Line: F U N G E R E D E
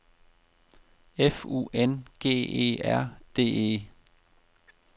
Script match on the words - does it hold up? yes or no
no